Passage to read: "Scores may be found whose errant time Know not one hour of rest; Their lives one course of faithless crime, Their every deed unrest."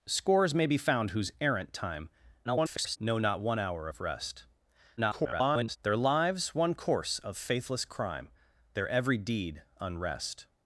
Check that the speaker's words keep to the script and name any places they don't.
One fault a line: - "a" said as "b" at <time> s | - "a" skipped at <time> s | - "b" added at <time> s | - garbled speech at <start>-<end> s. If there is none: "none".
- garbled speech at 2.4-3.0 s
- garbled speech at 5.0-5.8 s